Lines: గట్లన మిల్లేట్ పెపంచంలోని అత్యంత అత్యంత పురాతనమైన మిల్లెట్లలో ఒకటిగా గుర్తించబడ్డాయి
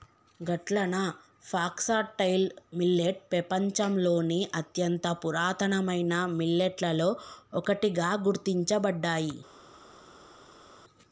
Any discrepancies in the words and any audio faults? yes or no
yes